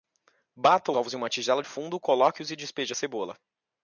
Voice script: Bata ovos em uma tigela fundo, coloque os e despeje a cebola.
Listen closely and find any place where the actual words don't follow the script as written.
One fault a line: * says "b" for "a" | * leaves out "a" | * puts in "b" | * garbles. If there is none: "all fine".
all fine